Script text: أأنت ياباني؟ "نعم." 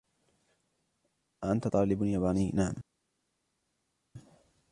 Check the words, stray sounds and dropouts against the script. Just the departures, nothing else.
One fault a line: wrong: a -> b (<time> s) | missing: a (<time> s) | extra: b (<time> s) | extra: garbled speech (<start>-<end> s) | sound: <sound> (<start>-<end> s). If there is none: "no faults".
extra: طالب (1.7 s)